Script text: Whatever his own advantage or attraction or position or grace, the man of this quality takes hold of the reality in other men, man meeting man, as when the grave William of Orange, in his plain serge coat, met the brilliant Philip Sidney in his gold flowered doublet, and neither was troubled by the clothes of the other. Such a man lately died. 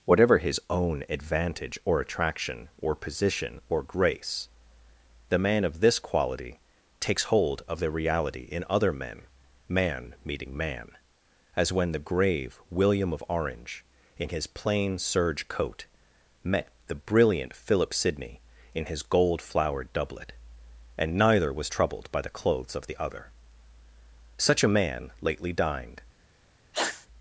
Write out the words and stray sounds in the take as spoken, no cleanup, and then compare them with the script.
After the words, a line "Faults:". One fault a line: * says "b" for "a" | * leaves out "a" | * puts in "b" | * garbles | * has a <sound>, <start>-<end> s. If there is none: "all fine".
Whatever his own advantage or attraction or position or grace, the man of this quality takes hold of the reality in other men, man meeting man, as when the grave William of Orange, in his plain serge coat, met the brilliant Philip Sidney in his gold flowered doublet, and neither was troubled by the clothes of the other. Such a man lately dined.
Faults:
* says "dined" for "died"
* has a sneeze, 26.7-27.1 s